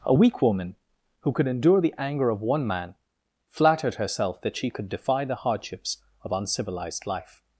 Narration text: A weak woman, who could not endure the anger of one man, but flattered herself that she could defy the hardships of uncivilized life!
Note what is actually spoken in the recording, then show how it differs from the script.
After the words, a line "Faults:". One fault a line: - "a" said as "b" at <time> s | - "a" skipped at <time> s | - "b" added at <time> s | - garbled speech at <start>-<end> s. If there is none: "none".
A weak woman, who could endure the anger of one man, flattered herself that she could defy the hardships of uncivilized life!
Faults:
- "not" skipped at 1.5 s
- "but" skipped at 2.9 s